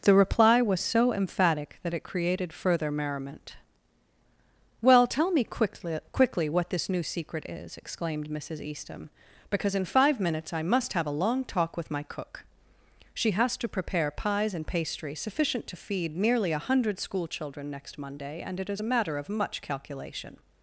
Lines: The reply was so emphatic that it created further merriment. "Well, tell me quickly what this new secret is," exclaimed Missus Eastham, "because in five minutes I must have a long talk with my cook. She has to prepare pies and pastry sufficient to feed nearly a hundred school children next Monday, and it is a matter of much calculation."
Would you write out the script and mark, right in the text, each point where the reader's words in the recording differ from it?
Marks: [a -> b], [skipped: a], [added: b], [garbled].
The reply was so emphatic that it created further merriment. "Well, tell me quickly [added: quickly] what this new secret is," exclaimed Missus Eastham, "because in five minutes I must have a long talk with my cook. She has to prepare pies and pastry sufficient to feed nearly a hundred school children next Monday, and it is a matter of much calculation."